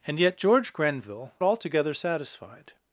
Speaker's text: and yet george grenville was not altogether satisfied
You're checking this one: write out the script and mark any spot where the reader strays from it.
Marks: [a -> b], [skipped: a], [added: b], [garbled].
and yet george grenville [skipped: was not] altogether satisfied